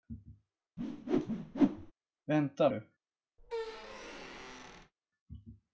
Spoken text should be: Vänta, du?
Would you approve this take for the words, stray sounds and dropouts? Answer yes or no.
no